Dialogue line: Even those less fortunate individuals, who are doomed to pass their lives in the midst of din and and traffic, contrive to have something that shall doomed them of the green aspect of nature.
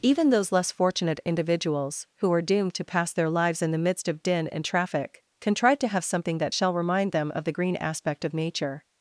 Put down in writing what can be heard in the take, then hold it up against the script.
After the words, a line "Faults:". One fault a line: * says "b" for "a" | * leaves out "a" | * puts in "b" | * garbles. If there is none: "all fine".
Even those less fortunate individuals, who are doomed to pass their lives in the midst of din and traffic, contrive to have something that shall remind them of the green aspect of nature.
Faults:
* leaves out "and"
* says "remind" for "doomed"